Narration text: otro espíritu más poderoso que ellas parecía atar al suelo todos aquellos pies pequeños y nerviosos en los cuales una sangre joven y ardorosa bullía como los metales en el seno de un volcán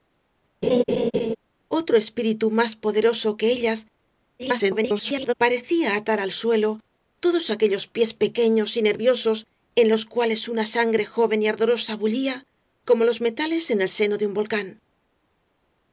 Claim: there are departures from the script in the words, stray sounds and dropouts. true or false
true